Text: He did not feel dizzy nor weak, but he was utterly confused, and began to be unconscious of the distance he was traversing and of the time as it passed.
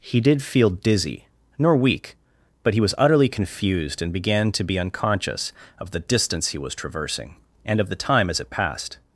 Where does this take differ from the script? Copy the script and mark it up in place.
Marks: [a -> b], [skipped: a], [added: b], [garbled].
He did [skipped: not] feel dizzy nor weak, but he was utterly confused, and began to be unconscious of the distance he was traversing and of the time as it passed.